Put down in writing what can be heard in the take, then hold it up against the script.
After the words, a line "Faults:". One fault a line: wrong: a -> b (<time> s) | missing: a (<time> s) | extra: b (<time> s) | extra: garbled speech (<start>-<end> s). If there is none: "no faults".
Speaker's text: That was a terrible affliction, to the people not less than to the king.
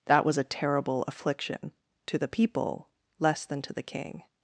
That was a terrible affliction, to the people less than to the king.
Faults:
missing: not (2.9 s)